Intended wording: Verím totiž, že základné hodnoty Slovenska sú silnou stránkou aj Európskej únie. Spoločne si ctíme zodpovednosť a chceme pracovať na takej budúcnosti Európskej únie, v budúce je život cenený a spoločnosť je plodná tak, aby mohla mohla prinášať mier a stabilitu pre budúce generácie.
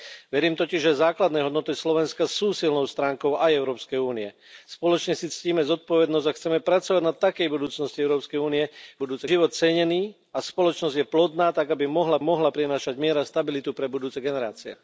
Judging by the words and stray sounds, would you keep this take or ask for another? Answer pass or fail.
pass